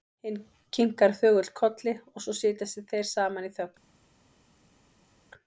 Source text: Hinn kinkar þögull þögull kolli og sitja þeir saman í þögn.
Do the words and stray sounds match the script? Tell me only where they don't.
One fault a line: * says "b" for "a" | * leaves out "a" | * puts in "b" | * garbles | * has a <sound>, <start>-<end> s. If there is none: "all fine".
* leaves out "þögull"
* puts in "svo"